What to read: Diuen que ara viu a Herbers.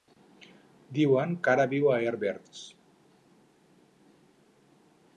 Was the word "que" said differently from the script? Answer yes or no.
no